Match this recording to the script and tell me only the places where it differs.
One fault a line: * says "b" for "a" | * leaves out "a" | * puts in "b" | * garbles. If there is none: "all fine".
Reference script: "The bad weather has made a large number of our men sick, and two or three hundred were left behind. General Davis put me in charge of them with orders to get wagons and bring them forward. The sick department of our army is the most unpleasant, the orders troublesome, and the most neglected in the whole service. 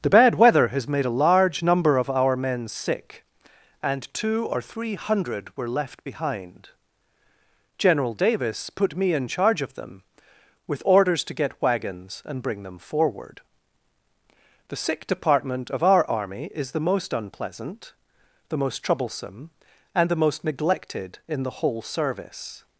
* says "most" for "orders"